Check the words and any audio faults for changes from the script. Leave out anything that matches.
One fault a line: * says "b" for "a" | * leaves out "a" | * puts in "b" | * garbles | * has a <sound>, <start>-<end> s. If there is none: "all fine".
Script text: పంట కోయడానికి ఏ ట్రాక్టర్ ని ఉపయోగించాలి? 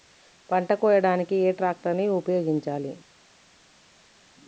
all fine